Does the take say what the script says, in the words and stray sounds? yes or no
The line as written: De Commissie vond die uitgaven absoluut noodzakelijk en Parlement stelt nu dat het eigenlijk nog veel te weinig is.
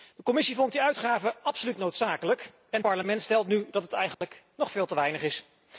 no